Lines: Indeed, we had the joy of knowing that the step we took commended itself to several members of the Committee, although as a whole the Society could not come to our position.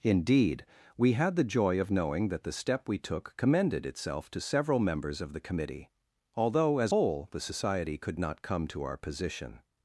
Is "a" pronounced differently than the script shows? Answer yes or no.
yes